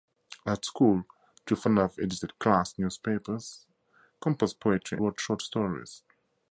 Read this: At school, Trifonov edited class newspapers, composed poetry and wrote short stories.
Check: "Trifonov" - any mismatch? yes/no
no